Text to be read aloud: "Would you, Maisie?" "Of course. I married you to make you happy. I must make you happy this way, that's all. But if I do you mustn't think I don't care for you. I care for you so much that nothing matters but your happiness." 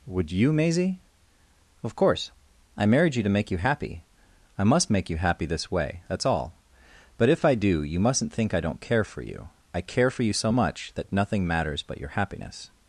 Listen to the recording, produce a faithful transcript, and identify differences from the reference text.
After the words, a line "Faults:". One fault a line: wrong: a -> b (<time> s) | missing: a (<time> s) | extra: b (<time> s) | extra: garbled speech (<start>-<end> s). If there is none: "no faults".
"Would you, Maisie?" "Of course. I married you to make you happy. I must make you happy this way, that's all. But if I do you mustn't think I don't care for you. I care for you so much that nothing matters but your happiness."
Faults:
no faults